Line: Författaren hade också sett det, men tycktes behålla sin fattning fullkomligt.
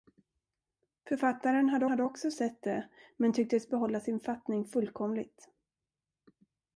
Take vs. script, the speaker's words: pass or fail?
fail